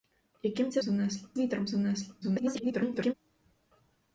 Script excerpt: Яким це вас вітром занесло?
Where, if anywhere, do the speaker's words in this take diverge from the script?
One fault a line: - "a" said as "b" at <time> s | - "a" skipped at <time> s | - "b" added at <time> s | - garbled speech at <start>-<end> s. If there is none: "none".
- "вас" said as "занесло" at 0.8 s
- garbled speech at 2.2-3.1 s